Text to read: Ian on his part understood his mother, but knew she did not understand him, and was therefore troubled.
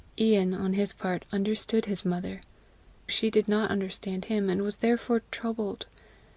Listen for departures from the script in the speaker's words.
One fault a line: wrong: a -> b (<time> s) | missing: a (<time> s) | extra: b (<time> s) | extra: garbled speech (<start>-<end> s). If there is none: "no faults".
missing: but knew (2.4 s)